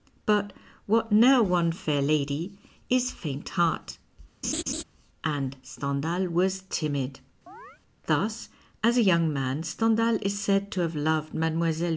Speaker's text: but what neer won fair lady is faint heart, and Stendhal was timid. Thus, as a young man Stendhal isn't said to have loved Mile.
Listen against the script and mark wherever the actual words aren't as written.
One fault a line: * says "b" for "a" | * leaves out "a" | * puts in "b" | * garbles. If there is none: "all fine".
* says "is" for "isn't"